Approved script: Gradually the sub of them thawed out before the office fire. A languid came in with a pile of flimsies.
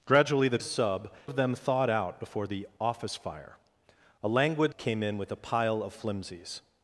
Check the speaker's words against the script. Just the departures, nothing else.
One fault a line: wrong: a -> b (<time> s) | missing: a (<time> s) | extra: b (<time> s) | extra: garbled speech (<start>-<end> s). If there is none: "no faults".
no faults